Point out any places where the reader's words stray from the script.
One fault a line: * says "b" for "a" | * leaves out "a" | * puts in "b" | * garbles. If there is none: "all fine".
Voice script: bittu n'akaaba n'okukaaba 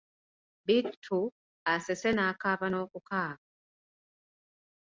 * puts in "asese"